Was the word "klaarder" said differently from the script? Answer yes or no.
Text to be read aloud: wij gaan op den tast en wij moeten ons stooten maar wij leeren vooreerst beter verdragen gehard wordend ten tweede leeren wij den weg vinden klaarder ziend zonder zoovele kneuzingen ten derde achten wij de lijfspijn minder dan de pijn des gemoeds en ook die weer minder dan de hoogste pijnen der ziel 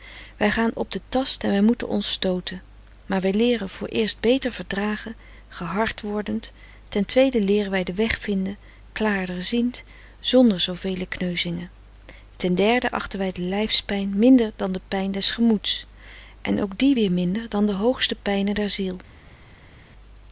no